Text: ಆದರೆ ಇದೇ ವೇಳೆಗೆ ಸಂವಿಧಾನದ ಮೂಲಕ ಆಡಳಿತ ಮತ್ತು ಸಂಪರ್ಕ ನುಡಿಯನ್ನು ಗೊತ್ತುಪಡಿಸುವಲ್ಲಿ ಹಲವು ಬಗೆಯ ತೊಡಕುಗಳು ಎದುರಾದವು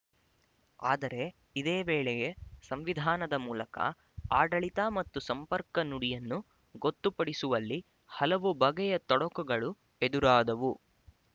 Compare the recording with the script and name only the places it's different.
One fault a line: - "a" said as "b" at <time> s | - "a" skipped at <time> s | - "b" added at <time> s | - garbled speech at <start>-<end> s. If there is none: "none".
none